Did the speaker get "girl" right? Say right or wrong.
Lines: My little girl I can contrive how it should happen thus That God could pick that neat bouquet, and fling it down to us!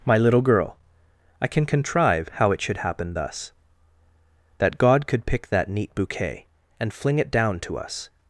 right